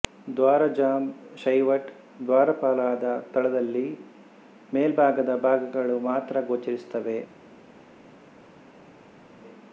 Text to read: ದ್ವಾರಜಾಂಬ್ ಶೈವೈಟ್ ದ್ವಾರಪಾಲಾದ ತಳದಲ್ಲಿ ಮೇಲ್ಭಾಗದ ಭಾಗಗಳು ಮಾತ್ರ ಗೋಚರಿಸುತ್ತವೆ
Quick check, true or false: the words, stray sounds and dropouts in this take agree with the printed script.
true